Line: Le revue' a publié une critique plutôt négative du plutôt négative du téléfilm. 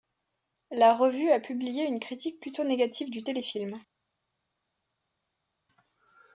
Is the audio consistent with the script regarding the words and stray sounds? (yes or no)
no